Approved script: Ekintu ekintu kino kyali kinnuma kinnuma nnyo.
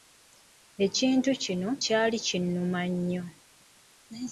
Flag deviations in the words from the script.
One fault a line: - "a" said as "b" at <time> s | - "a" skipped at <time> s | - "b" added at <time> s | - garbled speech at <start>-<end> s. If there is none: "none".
- "ekintu" skipped at 1.3 s
- "kinnuma" skipped at 2.8 s